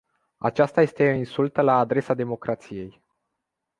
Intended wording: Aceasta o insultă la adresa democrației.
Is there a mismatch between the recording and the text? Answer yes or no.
yes